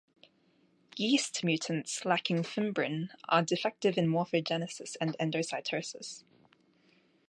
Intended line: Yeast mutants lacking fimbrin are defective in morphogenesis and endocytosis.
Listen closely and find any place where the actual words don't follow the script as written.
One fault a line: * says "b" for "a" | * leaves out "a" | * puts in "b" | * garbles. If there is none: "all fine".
all fine